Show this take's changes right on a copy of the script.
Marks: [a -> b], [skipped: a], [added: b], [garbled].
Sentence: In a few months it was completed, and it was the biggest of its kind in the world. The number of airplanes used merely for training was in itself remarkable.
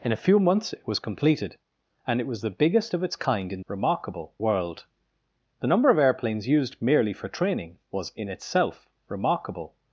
In a few months it was completed, and it was the biggest of its kind in [the -> remarkable] world. The number of airplanes used merely for training was in itself remarkable.